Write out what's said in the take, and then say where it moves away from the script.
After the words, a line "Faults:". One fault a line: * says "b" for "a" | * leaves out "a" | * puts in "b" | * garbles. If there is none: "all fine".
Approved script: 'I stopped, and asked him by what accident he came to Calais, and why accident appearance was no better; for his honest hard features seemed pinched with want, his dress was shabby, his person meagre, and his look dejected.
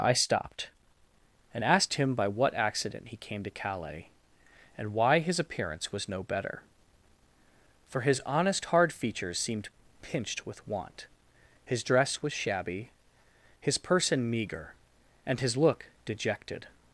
'I stopped, and asked him by what accident he came to Calais, and why his appearance was no better; for his honest hard features seemed pinched with want, his dress was shabby, his person meagre, and his look dejected.
Faults:
* says "his" for "accident"